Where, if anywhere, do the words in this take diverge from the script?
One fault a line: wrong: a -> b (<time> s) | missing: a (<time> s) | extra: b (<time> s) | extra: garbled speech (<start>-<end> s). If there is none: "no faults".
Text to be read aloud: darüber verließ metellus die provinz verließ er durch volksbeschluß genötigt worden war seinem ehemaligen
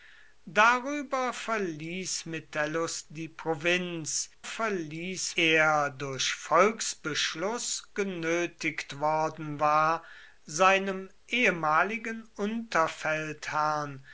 no faults